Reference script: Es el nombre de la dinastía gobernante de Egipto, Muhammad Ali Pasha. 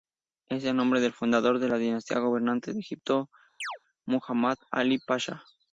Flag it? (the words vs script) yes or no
yes